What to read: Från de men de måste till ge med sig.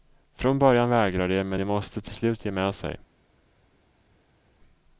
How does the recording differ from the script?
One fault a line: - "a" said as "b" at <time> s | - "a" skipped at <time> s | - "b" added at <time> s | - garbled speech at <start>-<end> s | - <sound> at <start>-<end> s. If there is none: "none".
- "början vägrar" added at 0.6 s
- "slut" added at 2.1 s